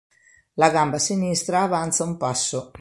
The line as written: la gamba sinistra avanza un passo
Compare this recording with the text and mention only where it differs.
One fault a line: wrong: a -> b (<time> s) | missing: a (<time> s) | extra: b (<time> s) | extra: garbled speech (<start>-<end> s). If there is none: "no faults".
no faults